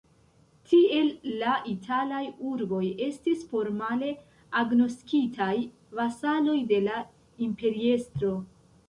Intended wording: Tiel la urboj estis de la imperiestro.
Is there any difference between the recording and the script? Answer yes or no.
yes